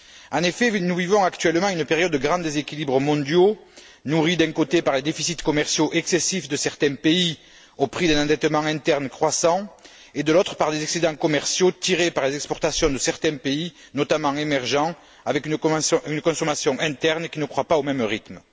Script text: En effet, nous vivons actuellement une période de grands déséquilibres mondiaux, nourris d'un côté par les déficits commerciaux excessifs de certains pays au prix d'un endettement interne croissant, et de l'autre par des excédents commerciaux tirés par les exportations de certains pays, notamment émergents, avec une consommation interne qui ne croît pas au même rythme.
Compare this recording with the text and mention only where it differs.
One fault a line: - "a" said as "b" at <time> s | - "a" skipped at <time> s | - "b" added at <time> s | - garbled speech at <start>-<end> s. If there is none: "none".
none